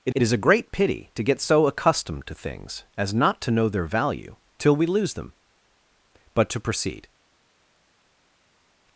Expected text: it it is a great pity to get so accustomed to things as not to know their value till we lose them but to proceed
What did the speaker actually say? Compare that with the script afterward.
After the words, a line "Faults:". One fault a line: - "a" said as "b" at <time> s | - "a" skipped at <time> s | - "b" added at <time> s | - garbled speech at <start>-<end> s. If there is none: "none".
it it is a great pity to get so accustomed to things as not to know their value till we lose them but to proceed
Faults:
none